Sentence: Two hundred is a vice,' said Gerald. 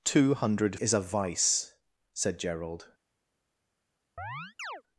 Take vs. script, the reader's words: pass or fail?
pass